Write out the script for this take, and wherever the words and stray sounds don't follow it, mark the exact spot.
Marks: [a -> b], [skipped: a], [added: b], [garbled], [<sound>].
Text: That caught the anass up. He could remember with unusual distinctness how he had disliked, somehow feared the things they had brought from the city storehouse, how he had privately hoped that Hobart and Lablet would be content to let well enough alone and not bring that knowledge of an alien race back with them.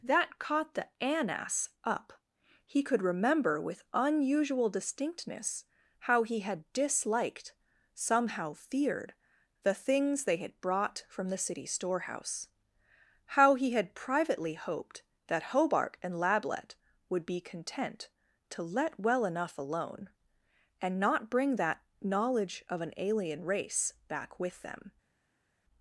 That caught the anass up. He could remember with unusual distinctness how he had disliked, somehow feared the things they had brought from the city storehouse, how he had privately hoped that Hobart and Lablet would be content to let well enough alone and not bring that knowledge of an alien race back with them.